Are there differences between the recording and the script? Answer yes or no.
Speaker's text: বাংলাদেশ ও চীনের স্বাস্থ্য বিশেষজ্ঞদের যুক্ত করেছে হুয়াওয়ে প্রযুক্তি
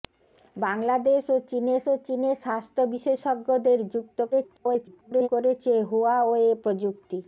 yes